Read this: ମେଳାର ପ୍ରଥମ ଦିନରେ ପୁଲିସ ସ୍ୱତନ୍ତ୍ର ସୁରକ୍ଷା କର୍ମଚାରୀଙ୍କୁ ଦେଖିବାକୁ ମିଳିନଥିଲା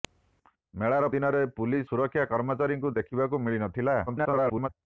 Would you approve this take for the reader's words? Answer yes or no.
no